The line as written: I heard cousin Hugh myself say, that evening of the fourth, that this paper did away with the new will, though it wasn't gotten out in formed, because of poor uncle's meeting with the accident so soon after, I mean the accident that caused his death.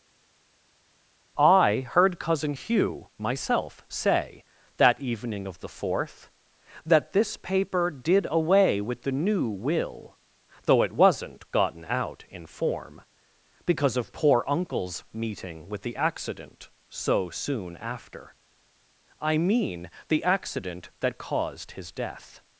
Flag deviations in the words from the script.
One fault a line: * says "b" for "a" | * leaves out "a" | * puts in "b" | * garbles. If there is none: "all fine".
* says "form" for "formed"